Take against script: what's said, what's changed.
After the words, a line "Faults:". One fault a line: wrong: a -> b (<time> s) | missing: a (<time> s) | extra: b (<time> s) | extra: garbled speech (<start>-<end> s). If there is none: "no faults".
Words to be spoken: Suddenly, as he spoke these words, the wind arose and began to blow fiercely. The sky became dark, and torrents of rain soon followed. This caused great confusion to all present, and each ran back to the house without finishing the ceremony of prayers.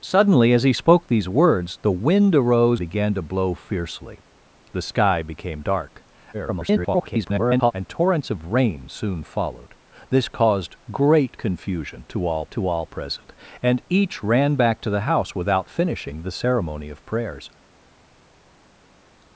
Suddenly, as he spoke these words, the wind arose began to blow fiercely. The sky became dark, [garbled] and torrents of rain soon followed. This caused great confusion to all to all present, and each ran back to the house without finishing the ceremony of prayers.
Faults:
missing: and (2.8 s)
extra: garbled speech (6.3-7.7 s)
extra: to all (12.5 s)